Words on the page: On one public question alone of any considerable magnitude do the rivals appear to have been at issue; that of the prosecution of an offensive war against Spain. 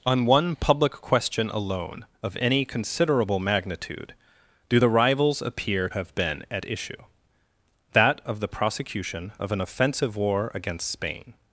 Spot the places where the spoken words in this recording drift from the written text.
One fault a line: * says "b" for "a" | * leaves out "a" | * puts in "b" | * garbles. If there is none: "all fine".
* leaves out "to"